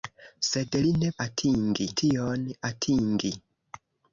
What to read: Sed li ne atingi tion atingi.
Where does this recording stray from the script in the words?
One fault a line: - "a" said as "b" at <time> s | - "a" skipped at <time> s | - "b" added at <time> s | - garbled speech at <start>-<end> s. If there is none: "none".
none